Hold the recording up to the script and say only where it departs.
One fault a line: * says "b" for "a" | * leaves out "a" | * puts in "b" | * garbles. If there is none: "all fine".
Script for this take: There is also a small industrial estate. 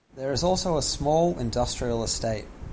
all fine